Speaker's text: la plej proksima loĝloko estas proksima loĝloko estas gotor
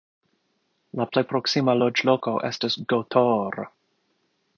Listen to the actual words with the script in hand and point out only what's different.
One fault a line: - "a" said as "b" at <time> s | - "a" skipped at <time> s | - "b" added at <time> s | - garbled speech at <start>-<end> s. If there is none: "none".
- "proksima loĝloko estas" skipped at 2.8 s